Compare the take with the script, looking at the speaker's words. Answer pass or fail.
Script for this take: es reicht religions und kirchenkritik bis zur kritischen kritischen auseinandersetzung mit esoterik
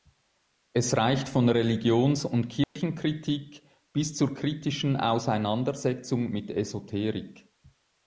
fail